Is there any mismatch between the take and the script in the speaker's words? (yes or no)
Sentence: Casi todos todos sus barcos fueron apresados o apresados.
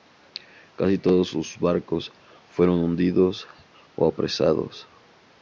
yes